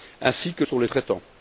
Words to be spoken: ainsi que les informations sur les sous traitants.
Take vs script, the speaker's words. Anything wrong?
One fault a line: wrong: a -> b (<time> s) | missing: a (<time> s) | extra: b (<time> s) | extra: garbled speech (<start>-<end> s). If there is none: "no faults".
missing: les informations (0.6 s)
missing: sous (0.9 s)